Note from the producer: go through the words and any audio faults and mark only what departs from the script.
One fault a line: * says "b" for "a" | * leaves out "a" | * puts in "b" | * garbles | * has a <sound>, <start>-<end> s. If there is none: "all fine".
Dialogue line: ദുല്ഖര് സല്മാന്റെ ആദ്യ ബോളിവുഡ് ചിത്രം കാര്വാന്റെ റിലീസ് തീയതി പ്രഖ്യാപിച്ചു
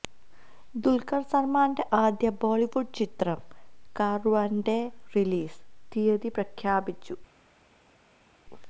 all fine